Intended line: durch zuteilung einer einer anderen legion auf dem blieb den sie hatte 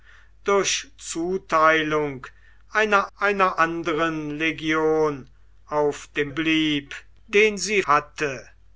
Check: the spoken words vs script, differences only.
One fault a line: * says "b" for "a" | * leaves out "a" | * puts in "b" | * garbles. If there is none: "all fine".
all fine